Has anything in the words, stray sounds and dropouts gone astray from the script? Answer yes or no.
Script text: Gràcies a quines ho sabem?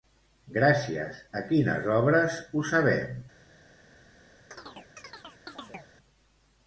yes